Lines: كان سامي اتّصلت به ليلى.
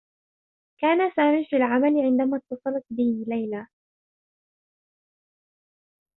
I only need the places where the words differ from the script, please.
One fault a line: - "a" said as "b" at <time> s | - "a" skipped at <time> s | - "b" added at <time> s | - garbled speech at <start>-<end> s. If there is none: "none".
- "في العمل عندما" added at 1.4 s